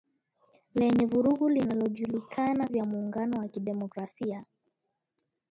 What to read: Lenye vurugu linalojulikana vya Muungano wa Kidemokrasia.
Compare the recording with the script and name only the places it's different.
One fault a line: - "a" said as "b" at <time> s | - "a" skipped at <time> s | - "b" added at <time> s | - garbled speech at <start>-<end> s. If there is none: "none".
none